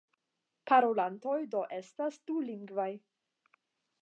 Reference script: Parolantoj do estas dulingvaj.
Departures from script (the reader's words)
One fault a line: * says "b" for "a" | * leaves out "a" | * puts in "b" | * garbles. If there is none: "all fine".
all fine